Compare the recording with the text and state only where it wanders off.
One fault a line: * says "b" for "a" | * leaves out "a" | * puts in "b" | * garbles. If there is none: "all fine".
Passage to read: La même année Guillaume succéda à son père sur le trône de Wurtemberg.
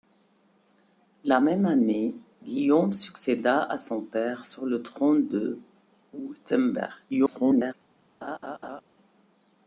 * garbles